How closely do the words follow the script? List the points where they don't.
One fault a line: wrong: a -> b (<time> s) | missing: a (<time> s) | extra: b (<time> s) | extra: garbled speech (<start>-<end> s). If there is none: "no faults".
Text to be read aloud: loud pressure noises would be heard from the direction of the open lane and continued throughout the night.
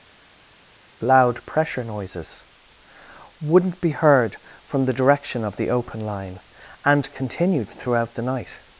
wrong: would -> wouldn't (3.4 s)
wrong: lane -> line (6.0 s)